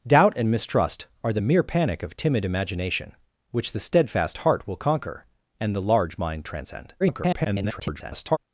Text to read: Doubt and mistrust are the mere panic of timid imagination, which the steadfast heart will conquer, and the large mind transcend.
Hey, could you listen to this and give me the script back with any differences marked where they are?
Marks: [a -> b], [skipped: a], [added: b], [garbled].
Doubt and mistrust are the mere panic of timid imagination, which the steadfast heart will conquer, and the large mind transcend. [garbled]